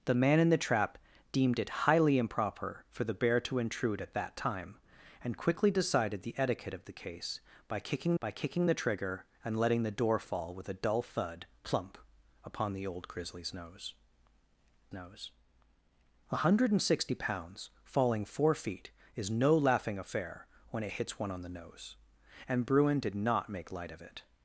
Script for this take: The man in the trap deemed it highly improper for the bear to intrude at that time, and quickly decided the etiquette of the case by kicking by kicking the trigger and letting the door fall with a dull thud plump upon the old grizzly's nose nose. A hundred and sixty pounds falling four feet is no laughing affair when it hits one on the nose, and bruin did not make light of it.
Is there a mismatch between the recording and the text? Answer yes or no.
no